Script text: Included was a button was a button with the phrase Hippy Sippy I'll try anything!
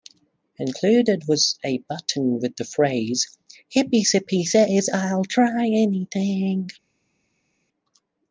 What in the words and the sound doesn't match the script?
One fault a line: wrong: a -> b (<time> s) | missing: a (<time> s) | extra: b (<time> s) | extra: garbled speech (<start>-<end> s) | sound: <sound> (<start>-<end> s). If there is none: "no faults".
missing: was a button (2.4 s)
extra: says (4.4 s)